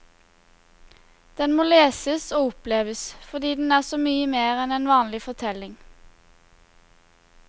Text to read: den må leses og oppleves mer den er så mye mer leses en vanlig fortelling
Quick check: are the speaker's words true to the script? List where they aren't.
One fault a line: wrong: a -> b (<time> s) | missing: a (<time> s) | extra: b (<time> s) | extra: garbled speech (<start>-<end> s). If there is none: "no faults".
wrong: mer -> fordi (3.3 s)
wrong: leses -> enn (4.6 s)